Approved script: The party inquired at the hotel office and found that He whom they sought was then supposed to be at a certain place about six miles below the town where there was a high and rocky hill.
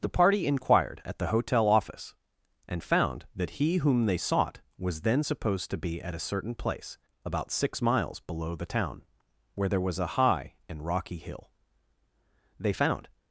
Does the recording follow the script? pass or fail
fail